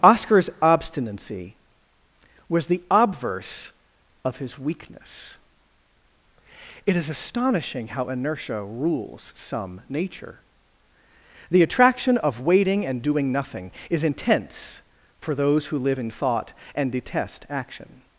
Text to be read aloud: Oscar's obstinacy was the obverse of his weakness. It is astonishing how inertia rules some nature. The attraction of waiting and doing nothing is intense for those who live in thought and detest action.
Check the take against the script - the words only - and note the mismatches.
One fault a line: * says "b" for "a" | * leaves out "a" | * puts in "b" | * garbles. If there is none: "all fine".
all fine